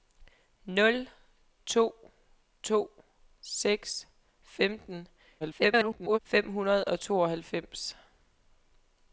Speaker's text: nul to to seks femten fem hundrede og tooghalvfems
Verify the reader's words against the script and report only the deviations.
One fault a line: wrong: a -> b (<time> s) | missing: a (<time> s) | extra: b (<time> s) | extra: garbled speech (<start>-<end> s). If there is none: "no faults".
extra: garbled speech (5.4-6.2 s)